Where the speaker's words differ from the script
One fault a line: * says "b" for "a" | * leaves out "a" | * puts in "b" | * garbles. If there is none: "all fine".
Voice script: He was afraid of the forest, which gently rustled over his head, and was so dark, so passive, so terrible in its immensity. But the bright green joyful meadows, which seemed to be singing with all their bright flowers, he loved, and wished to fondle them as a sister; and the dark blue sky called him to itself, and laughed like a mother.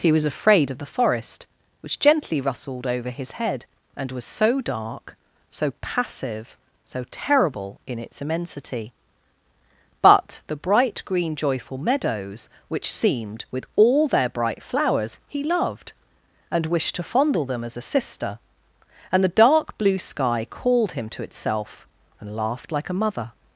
* leaves out "to be singing"